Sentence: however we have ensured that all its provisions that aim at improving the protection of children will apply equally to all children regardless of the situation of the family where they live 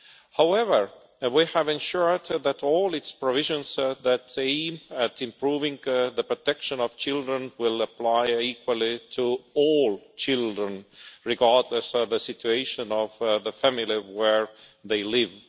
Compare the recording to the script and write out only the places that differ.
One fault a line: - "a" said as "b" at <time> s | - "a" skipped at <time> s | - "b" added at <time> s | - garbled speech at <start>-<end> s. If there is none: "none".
- "of" skipped at 11.9 s